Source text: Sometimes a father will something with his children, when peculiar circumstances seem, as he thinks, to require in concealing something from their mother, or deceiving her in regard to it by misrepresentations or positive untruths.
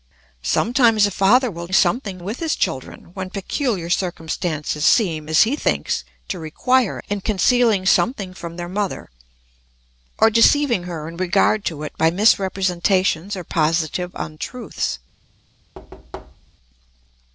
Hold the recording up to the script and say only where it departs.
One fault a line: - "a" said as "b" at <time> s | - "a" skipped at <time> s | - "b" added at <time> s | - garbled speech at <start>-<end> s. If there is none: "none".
none